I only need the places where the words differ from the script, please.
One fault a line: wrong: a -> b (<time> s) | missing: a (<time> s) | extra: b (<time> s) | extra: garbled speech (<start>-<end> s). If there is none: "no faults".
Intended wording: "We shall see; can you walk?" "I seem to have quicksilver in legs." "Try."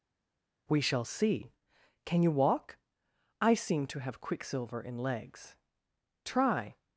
no faults